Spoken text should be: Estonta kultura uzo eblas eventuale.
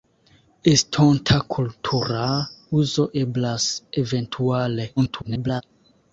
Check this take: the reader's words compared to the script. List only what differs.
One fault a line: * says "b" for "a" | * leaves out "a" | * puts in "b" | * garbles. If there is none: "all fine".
* garbles